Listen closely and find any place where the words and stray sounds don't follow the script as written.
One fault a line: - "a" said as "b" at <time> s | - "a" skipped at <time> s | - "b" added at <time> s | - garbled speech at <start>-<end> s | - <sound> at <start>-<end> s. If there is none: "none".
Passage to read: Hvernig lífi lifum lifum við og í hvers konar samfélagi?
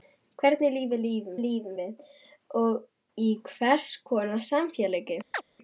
- chirp at 5.3-5.4 s